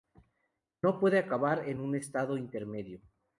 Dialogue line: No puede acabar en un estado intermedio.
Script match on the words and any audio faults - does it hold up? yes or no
yes